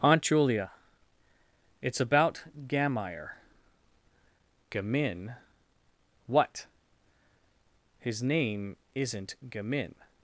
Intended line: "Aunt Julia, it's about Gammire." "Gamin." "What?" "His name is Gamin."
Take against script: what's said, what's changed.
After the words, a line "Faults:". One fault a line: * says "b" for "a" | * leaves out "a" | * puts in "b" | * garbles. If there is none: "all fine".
"Aunt Julia, it's about Gammire." "Gamin." "What?" "His name isn't Gamin."
Faults:
* says "isn't" for "is"